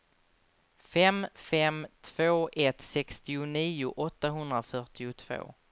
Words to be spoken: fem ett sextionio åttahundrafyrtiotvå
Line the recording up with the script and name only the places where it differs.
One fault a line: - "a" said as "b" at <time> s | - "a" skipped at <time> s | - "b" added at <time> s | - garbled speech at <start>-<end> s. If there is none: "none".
- "fem två" added at 1.3 s